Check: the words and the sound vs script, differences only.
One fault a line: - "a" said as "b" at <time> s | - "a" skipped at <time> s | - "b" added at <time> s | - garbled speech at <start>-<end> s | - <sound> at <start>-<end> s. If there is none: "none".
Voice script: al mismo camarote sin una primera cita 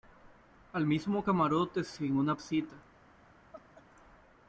- "primera" skipped at 2.4 s
- laugh at 3.5-3.8 s